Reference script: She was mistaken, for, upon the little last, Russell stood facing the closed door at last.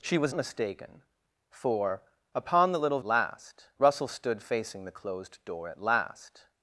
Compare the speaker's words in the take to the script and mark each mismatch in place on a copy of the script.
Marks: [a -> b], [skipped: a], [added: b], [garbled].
She was mistaken, for, upon the little last, Russell stood facing the closed door at last.